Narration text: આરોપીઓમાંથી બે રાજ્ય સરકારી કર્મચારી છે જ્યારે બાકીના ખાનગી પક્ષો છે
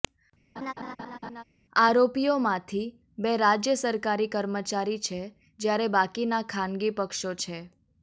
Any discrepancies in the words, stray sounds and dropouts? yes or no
yes